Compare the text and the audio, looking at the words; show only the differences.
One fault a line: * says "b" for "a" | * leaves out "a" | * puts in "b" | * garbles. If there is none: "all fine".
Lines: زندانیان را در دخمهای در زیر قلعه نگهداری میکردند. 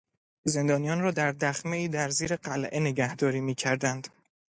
all fine